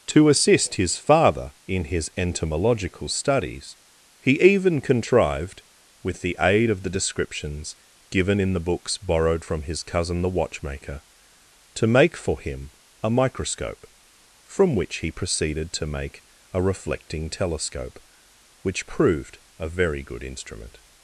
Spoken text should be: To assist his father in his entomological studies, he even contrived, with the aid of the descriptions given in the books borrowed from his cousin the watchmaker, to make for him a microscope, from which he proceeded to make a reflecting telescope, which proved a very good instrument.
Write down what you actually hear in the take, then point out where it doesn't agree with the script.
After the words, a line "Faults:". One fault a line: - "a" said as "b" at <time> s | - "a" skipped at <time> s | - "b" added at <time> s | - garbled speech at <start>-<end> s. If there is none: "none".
To assist his father in his entomological studies, he even contrived, with the aid of the descriptions given in the books borrowed from his cousin the watchmaker, to make for him a microscope, from which he proceeded to make a reflecting telescope, which proved a very good instrument.
Faults:
none